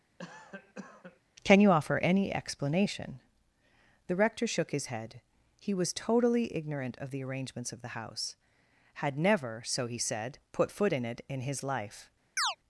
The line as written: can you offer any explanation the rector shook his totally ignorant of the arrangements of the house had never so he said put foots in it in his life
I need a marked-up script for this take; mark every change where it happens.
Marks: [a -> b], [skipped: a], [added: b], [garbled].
can you offer any explanation the rector shook his [added: head he was] totally ignorant of the arrangements of the house had never so he said put [foots -> foot] in it in his life